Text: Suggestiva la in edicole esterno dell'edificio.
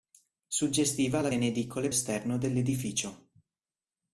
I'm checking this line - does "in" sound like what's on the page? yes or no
yes